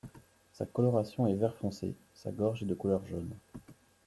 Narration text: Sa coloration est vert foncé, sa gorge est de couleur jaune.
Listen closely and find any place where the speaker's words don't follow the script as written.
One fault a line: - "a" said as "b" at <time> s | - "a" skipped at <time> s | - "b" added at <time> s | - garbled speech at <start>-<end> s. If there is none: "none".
none